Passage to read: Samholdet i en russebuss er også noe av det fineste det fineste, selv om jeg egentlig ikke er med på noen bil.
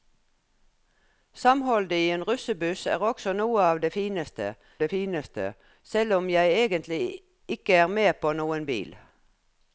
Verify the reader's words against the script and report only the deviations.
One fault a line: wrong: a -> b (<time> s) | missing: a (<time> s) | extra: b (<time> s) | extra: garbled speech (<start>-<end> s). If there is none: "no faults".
no faults